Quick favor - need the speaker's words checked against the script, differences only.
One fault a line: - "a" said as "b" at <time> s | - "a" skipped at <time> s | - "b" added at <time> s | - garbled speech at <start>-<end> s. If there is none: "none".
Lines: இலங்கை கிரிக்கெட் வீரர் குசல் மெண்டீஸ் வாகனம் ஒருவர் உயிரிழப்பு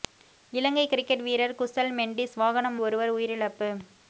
none